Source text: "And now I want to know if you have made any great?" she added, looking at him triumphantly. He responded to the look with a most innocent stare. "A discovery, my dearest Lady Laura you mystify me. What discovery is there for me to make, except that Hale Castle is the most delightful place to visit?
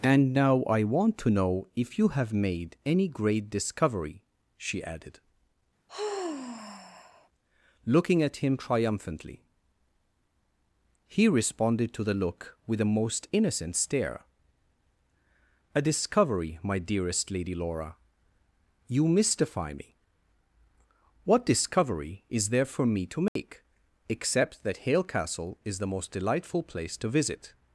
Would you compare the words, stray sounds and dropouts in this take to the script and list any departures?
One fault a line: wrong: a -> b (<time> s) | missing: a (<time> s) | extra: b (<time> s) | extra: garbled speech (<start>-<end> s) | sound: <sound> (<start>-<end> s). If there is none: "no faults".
extra: discovery (3.5 s)
sound: sigh (5.9-7.3 s)
sound: dropout (23.3-23.4 s)